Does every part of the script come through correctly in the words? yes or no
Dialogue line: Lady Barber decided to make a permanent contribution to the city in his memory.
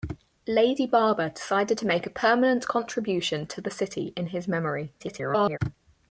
no